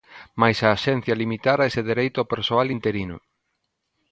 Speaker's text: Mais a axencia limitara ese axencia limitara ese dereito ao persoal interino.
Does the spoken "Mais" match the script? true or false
true